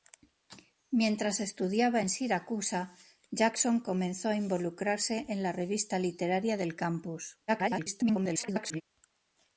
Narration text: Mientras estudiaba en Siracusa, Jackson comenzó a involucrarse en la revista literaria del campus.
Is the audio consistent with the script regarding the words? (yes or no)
no